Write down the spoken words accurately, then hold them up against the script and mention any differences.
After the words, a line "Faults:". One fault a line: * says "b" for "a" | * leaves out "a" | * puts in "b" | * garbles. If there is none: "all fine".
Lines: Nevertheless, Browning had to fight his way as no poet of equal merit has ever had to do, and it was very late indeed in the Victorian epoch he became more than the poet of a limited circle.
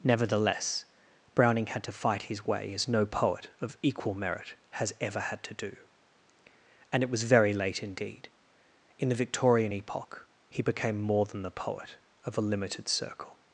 Nevertheless, Browning had to fight his way as no poet of equal merit has ever had to do, and it was very late indeed in the Victorian epoch he became more than the poet of a limited circle.
Faults:
all fine